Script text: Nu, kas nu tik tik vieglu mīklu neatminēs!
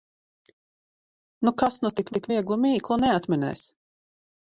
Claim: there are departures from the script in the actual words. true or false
false